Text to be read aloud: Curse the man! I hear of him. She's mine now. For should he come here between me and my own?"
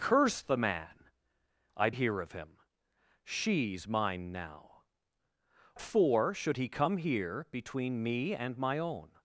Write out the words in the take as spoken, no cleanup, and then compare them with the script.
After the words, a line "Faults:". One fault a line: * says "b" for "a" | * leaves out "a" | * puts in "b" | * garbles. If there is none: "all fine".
Curse the man! I hear of him. She's mine now. For should he come here between me and my own?"
Faults:
all fine